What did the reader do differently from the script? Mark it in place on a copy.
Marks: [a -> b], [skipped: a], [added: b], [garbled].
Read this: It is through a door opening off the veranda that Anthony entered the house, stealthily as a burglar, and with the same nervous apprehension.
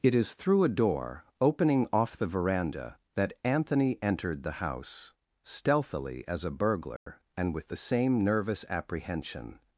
It is through a door opening off the veranda that Anthony entered the house, stealthily as a burglar, and with the same nervous apprehension.